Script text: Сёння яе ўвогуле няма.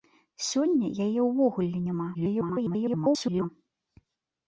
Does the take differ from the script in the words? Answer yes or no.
yes